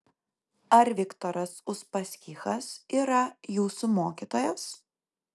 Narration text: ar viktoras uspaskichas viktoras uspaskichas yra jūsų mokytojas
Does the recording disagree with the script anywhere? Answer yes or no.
yes